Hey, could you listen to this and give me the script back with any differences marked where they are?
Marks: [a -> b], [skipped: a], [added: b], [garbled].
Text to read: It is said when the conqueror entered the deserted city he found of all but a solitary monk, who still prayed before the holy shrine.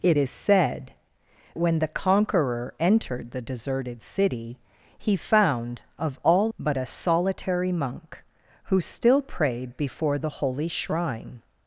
It is said when the conqueror entered the deserted city he found of all but a solitary monk, who still prayed before the holy shrine.